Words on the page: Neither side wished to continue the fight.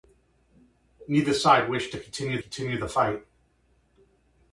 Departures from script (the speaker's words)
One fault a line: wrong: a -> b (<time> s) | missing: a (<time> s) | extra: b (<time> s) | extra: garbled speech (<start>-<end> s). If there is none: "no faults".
extra: continue (2.4 s)